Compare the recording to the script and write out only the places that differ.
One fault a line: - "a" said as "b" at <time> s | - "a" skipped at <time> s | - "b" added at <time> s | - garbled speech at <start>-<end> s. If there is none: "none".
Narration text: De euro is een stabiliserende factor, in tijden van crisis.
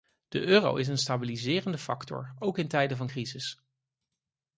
- "ook" added at 2.4 s